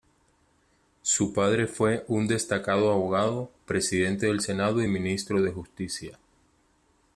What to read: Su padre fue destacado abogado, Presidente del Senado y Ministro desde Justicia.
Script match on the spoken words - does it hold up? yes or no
no